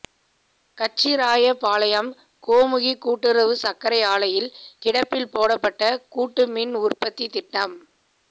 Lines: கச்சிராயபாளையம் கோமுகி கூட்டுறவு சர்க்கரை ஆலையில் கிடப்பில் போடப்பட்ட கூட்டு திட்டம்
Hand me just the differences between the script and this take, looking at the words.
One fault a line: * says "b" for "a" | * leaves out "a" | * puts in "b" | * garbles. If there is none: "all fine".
* puts in "மின் உற்பத்தி"